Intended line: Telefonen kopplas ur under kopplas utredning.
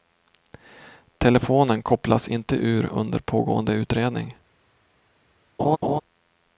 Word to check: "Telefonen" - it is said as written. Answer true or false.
true